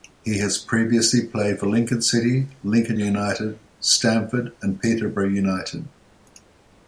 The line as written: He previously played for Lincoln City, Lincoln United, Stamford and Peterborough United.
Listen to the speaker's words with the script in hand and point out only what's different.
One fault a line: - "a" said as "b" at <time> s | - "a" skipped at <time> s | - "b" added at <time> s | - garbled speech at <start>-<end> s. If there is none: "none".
- "has" added at 0.4 s